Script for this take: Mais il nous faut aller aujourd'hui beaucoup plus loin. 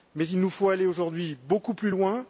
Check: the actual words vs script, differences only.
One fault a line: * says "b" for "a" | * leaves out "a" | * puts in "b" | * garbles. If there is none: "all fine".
all fine